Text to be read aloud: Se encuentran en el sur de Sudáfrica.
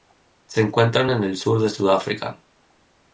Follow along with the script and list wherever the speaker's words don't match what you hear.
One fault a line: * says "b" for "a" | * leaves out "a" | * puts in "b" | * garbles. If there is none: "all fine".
all fine